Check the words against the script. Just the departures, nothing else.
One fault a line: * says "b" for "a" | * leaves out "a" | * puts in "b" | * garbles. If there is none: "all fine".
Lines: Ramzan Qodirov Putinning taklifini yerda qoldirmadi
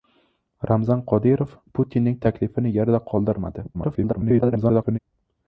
* garbles